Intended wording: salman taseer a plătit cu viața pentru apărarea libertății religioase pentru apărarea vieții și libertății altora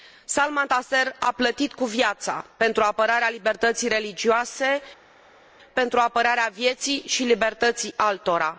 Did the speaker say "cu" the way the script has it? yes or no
yes